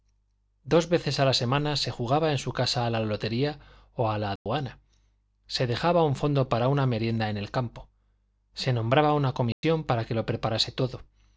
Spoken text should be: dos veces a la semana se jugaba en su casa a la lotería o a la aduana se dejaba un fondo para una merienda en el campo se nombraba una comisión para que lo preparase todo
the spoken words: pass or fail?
pass